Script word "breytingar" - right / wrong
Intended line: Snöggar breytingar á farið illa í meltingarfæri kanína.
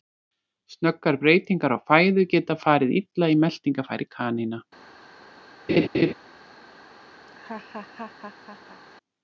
right